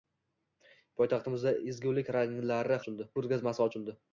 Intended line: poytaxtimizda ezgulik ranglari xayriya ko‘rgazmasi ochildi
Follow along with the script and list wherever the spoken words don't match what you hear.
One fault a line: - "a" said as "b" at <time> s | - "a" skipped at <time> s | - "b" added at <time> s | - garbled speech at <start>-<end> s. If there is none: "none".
- "xayriya" said as "ochildi" at 2.8 s